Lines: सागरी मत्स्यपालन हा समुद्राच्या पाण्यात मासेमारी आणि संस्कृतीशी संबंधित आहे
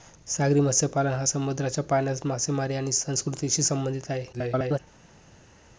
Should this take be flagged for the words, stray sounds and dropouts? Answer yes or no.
yes